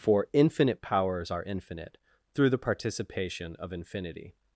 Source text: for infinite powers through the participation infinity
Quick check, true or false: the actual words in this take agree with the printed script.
false